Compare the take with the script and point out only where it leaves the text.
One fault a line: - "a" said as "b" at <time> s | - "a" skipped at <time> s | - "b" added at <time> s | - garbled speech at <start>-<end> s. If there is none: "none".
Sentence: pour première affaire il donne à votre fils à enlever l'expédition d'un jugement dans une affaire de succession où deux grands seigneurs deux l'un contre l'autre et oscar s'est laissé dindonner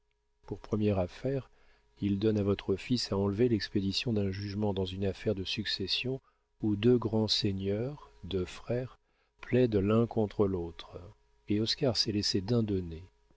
- "frères plaident" added at 8.4 s